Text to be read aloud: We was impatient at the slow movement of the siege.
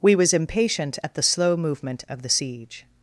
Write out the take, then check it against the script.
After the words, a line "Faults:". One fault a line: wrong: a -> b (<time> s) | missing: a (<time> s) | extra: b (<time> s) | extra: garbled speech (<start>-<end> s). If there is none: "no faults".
We was impatient at the slow movement of the siege.
Faults:
no faults